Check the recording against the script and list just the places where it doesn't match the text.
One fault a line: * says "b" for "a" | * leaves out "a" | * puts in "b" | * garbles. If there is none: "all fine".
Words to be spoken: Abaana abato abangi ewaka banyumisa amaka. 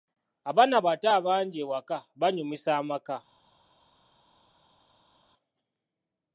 all fine